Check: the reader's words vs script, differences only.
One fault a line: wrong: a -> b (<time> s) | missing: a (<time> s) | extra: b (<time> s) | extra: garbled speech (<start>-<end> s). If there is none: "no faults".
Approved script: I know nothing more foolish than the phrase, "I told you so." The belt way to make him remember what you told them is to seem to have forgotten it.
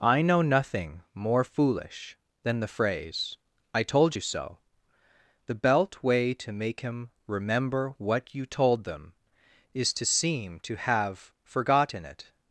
no faults